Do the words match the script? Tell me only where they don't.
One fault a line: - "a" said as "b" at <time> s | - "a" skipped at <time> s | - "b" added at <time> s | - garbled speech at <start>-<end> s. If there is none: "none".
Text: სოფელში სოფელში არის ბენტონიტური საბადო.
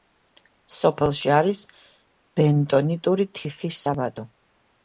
- "სოფელში" skipped at 1.3 s
- "თიხის" added at 3.4 s